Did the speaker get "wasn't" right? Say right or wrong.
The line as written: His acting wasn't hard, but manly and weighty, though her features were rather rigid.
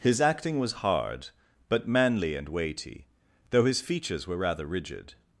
wrong